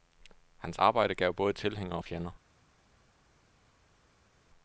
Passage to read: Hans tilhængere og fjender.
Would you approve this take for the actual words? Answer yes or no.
no